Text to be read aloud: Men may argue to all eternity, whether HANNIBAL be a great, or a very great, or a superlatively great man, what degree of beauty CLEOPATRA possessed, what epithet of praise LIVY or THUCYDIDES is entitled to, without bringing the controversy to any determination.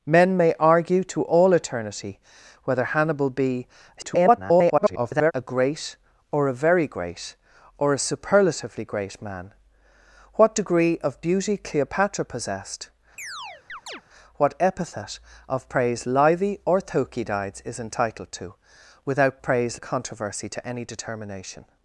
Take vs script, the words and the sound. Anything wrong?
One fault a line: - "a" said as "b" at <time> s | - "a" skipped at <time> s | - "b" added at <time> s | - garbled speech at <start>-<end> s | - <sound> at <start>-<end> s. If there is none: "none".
- garbled speech at 4.0-5.3 s
- chirp at 13.2-14.0 s
- "bringing" said as "praise" at 19.4 s